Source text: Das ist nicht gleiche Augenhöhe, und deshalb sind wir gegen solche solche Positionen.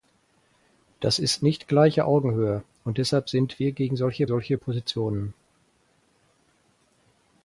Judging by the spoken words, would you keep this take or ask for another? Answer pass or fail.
pass